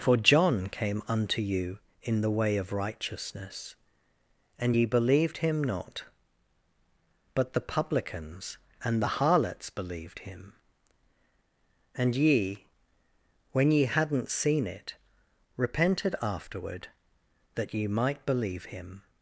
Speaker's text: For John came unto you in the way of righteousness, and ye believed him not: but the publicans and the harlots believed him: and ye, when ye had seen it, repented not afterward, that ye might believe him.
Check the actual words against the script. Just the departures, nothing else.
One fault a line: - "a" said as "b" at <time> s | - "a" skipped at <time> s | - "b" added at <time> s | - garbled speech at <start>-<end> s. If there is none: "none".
- "had" said as "hadn't" at 13.9 s
- "not" skipped at 16.1 s